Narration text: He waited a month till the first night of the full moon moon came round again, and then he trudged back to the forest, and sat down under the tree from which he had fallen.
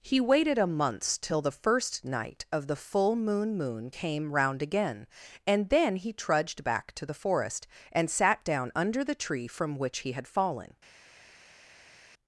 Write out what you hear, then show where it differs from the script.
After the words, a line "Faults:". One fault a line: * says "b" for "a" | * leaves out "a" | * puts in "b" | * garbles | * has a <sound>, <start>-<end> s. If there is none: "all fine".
He waited a month till the first night of the full moon moon came round again, and then he trudged back to the forest, and sat down under the tree from which he had fallen.
Faults:
all fine